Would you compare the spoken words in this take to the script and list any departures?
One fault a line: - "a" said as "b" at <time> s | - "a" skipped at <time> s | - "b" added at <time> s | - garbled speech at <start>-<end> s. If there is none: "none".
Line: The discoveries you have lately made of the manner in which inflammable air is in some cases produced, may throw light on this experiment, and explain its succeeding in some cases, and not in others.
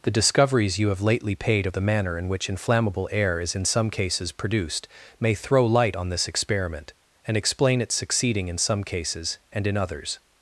- "made" said as "paid" at 1.4 s
- "not" skipped at 9.7 s